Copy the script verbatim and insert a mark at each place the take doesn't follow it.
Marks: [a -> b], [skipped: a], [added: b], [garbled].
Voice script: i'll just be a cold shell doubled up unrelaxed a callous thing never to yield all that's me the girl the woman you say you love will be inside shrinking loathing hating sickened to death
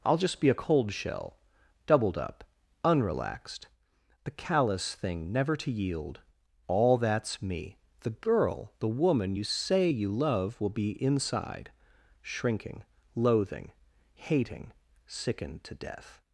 i'll just be a cold shell doubled up unrelaxed [a -> the] callous thing never to yield all that's me the girl the woman you say you love will be inside shrinking loathing hating sickened to death